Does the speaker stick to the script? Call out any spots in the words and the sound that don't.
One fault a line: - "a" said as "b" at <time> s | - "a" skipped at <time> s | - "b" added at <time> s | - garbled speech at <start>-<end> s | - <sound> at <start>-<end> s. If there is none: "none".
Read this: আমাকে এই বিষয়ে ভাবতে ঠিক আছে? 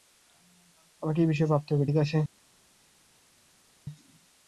- "হবে" added at 1.7 s